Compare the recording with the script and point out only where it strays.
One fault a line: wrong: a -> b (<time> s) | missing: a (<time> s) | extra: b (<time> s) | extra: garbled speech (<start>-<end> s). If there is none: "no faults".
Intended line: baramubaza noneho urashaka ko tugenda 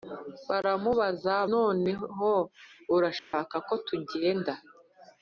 no faults